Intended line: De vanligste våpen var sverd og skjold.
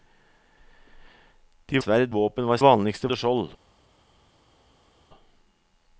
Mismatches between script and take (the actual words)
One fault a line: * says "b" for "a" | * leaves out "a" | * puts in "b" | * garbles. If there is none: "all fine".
* says "sverd" for "vanligste"
* says "vanligste" for "sverd"